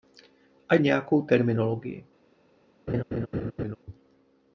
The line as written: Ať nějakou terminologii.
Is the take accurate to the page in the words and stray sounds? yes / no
no